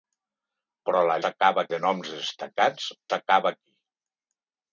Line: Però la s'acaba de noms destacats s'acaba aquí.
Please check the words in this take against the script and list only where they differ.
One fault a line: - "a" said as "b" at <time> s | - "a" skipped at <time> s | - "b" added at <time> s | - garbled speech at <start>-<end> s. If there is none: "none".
none